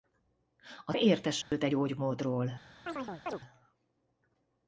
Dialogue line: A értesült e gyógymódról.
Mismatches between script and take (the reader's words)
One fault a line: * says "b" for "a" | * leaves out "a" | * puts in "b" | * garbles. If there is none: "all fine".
all fine